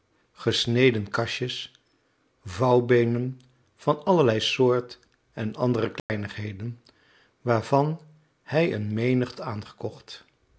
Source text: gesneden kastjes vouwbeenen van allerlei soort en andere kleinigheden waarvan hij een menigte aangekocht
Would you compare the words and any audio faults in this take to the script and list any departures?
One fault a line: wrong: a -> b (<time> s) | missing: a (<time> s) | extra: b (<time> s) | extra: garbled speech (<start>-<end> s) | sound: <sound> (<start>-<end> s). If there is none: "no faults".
sound: dropout (6.0-6.1 s)